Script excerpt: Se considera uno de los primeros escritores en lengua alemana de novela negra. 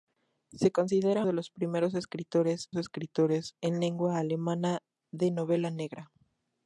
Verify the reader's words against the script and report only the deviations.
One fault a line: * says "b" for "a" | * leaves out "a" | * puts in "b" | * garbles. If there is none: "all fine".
* leaves out "uno"
* puts in "escritores"